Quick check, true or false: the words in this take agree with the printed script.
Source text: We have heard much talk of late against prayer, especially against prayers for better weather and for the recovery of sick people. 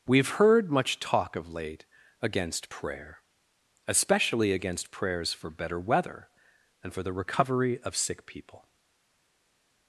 true